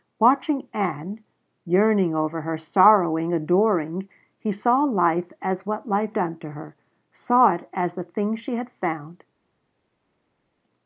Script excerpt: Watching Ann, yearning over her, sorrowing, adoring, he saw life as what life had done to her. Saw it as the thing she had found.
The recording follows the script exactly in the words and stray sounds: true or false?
false